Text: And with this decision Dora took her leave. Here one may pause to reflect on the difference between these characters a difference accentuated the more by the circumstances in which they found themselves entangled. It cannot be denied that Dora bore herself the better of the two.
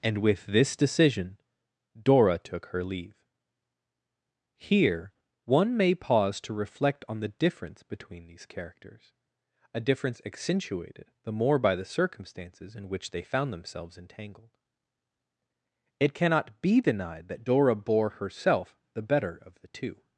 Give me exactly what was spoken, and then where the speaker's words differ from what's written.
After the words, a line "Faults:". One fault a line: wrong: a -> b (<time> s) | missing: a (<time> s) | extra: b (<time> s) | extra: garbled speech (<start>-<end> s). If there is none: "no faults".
And with this decision Dora took her leave. Here one may pause to reflect on the difference between these characters a difference accentuated the more by the circumstances in which they found themselves entangled. It cannot be denied that Dora bore herself the better of the two.
Faults:
no faults